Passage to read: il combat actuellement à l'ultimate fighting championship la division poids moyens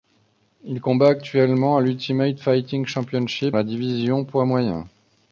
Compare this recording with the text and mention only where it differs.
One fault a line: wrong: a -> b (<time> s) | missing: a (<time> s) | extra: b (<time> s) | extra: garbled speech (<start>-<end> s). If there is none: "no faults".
no faults